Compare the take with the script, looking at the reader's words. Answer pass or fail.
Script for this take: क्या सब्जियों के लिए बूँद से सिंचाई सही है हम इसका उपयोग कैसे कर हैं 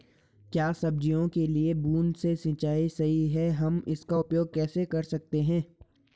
fail